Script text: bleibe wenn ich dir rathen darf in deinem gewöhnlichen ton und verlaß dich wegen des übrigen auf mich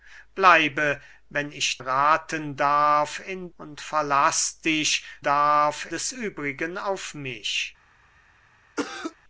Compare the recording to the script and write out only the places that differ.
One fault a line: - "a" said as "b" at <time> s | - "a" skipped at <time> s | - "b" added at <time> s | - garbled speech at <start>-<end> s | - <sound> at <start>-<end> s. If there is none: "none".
- "dir" skipped at 1.8 s
- "deinem gewöhnlichen ton" skipped at 3.5 s
- "wegen" said as "darf" at 5.2 s
- cough at 8.8-9.2 s